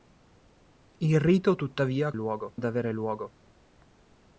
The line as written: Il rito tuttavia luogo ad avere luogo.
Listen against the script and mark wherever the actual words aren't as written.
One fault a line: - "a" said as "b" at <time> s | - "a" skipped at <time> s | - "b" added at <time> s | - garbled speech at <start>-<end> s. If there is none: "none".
none